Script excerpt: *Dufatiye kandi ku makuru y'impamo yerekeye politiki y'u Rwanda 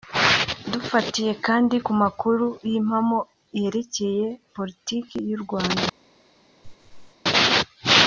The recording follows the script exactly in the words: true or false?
true